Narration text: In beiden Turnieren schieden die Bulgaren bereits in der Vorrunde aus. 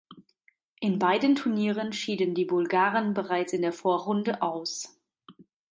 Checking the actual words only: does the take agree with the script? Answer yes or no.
yes